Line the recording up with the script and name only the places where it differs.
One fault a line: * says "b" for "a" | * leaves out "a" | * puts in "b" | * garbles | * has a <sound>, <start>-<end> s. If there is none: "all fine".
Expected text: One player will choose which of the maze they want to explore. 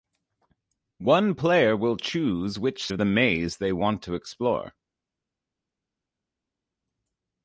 all fine